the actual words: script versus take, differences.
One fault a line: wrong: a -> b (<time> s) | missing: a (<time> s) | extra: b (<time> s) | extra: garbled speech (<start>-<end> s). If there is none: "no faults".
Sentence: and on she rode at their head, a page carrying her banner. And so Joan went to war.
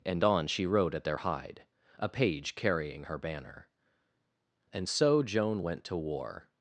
wrong: head -> hide (1.2 s)